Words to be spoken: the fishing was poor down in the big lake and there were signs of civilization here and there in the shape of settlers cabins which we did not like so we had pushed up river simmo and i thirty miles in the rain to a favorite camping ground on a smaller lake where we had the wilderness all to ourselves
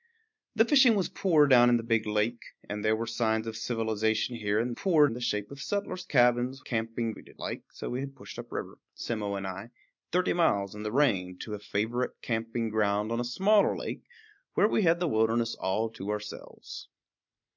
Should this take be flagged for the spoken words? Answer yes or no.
yes